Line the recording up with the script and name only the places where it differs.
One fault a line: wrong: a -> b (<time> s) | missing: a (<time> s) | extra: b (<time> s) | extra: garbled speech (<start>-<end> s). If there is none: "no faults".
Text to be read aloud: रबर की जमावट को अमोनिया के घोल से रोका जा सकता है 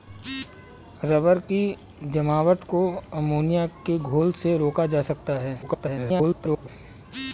extra: garbled speech (5.6-6.7 s)